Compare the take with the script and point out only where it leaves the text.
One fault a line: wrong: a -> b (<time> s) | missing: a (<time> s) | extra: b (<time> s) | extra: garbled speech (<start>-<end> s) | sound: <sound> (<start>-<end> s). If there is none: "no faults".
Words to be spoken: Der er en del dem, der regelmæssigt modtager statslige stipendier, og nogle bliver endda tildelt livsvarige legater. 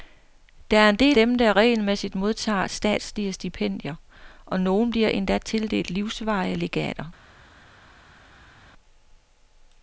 no faults